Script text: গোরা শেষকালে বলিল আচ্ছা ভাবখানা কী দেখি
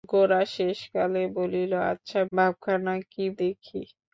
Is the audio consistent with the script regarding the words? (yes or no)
yes